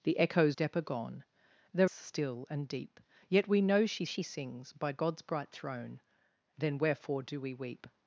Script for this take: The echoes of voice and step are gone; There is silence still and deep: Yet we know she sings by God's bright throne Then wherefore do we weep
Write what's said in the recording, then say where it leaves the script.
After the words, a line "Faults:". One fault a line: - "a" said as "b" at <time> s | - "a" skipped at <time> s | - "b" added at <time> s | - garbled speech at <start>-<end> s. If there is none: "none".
The echoes step are gone; There still and deep: Yet we know she she sings by God's bright throne Then wherefore do we weep
Faults:
- "of voice and" skipped at 0.6 s
- "is silence" skipped at 1.9 s
- "she" added at 4.0 s